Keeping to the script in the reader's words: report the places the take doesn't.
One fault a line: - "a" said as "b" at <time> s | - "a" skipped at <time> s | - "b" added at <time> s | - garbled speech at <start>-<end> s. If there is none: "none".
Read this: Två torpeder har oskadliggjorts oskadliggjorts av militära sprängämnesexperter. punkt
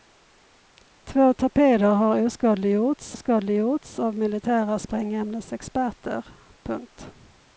none